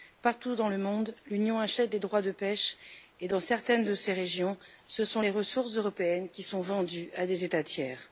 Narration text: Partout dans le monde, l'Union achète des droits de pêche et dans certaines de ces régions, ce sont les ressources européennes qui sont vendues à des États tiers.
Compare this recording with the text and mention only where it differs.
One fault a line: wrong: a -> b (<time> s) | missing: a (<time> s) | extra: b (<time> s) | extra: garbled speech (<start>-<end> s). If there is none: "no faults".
no faults